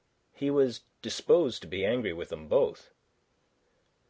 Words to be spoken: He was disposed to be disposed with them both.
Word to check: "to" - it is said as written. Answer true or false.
true